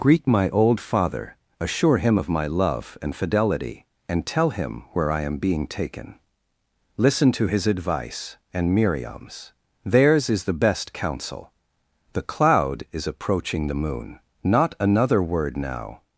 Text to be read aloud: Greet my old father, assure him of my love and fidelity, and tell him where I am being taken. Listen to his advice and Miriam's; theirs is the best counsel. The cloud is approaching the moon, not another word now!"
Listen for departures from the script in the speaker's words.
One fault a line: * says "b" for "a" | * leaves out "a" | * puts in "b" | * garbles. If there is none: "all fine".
all fine